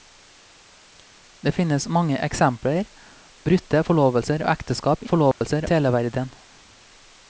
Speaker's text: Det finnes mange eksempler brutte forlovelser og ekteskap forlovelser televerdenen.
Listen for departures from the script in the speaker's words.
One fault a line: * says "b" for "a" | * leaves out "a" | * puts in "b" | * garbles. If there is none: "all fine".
all fine